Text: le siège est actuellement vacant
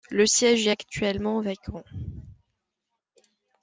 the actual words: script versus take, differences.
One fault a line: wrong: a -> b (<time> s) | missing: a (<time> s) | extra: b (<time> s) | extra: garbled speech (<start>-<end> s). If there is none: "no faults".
no faults